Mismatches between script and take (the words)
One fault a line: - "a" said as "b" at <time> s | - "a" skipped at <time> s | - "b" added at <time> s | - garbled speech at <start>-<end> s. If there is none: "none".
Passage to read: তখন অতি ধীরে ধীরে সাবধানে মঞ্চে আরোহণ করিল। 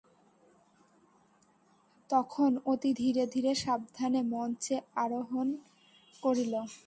none